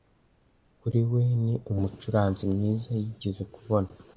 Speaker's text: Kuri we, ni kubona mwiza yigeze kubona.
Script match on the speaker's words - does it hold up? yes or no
no